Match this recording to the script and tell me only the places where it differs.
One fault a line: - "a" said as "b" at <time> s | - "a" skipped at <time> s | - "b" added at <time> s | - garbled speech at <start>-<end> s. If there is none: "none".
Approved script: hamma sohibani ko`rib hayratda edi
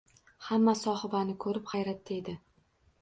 none